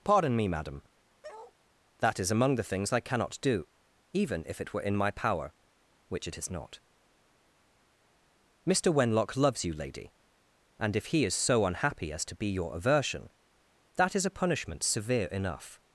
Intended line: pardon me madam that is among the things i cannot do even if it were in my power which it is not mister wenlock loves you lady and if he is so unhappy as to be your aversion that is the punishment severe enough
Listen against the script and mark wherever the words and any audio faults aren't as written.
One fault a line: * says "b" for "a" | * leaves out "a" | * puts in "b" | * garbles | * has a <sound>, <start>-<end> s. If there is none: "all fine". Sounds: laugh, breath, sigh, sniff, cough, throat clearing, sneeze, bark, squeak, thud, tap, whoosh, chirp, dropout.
* has a bark, 1.2-1.6 s
* says "a" for "the"